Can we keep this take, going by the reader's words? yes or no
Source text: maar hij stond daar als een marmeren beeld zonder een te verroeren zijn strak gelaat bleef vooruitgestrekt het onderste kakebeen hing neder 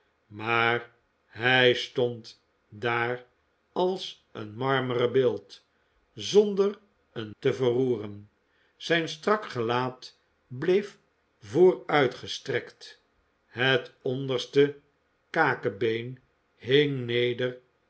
yes